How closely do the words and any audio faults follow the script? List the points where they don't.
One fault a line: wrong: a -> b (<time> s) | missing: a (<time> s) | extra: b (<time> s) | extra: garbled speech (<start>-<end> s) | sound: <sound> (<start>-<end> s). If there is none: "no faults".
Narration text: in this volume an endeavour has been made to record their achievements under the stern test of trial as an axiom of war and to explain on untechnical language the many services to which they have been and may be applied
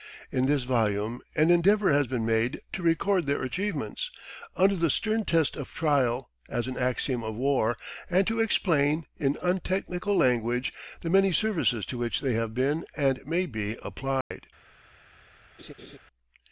wrong: on -> in (9.2 s)
sound: dropout (14.2-14.3 s)
sound: laugh (15.6-16.0 s)